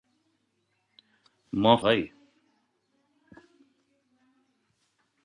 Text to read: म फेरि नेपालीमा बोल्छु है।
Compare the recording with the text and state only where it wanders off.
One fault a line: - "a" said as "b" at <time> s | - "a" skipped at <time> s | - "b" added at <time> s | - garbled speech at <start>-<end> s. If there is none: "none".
- "फेरि नेपालीमा बोल्छु" skipped at 1.8 s